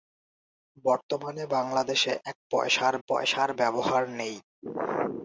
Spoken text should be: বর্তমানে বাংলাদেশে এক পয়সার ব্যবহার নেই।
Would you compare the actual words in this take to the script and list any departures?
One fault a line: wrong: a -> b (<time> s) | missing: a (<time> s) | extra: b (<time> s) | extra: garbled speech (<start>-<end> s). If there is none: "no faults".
extra: পয়সার (3.1 s)